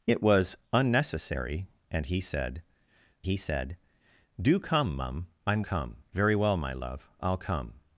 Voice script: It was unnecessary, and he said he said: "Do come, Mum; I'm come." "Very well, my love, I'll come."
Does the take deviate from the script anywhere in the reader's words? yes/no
no